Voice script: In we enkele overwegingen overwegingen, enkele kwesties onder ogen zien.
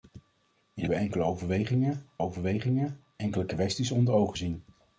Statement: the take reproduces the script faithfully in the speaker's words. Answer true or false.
true